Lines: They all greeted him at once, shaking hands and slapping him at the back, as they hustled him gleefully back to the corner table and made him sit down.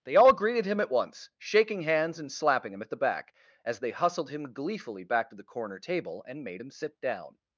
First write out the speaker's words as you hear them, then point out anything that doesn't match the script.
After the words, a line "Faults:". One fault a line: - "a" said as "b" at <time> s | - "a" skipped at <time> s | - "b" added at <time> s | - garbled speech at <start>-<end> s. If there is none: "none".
They all greeted him at once, shaking hands and slapping him at the back, as they hustled him gleefully back to the corner table and made him sit down.
Faults:
none